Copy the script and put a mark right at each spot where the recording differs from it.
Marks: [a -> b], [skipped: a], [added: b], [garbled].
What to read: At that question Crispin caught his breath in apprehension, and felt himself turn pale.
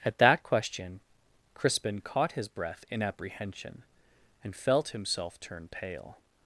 At that question Crispin caught his breath in apprehension, and felt himself turn pale.